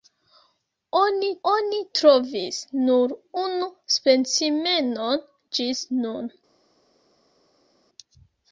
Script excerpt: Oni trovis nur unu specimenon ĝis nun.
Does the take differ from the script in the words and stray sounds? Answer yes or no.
yes